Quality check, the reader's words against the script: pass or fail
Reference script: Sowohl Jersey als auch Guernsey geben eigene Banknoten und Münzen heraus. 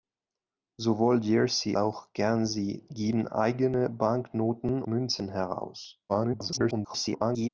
fail